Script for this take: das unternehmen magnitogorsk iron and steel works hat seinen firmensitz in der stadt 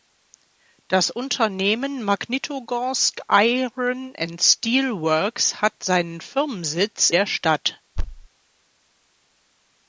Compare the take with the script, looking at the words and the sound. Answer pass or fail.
fail